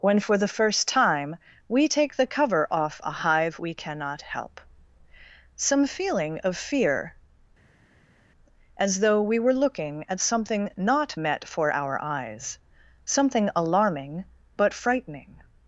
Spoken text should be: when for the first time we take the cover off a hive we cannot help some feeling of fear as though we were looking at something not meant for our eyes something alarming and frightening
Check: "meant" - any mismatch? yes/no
yes